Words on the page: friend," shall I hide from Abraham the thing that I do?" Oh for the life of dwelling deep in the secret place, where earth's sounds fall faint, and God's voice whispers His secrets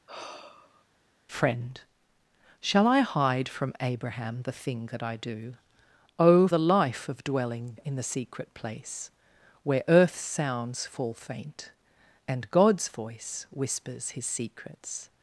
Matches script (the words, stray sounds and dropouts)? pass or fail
fail